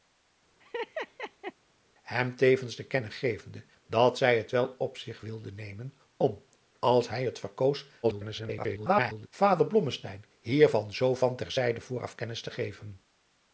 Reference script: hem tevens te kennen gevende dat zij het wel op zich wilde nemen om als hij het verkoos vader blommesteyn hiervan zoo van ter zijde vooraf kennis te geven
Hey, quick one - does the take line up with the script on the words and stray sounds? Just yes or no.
no